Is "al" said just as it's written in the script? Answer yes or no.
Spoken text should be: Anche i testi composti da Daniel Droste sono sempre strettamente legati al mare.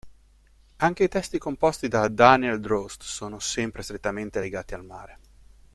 yes